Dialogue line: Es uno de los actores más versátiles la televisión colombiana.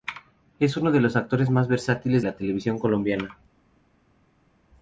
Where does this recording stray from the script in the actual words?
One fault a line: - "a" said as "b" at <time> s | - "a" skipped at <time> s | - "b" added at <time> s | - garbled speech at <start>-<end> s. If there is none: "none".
none